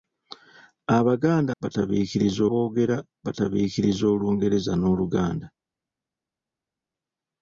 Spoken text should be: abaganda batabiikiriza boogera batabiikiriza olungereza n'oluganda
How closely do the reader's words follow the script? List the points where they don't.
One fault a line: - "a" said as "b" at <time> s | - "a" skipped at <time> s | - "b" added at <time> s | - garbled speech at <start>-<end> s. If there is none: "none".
none